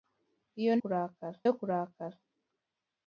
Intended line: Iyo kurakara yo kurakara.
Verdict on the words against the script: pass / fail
pass